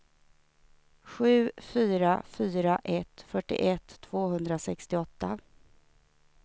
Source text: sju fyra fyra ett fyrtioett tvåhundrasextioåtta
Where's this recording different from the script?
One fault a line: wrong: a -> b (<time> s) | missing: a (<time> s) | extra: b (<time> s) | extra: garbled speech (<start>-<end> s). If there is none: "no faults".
no faults